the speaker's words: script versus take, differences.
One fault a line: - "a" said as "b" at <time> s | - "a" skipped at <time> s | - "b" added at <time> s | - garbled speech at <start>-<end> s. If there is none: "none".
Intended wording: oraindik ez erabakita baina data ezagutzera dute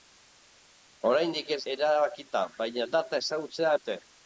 none